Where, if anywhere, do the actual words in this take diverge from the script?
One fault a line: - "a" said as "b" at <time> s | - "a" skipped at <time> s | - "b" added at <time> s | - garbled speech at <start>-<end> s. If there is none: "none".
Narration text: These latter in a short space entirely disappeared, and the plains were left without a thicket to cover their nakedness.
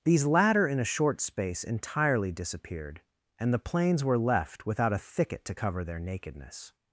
none